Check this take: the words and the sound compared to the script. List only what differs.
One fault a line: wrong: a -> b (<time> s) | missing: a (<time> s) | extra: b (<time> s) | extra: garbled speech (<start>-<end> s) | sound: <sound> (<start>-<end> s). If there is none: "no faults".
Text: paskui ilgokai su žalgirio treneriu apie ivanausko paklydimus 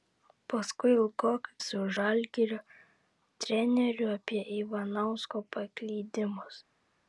no faults